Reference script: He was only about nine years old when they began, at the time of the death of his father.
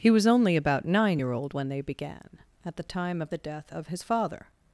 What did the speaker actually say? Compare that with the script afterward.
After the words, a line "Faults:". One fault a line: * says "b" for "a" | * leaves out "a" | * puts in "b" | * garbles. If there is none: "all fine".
He was only about nine year old when they began, at the time of the death of his father.
Faults:
* says "year" for "years"